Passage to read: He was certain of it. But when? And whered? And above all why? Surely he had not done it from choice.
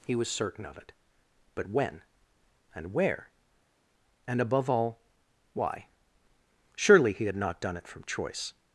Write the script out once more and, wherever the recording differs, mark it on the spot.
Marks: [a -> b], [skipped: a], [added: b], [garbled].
He was certain of it. But when? And [whered? -> where] And above all why? Surely he had not done it from choice.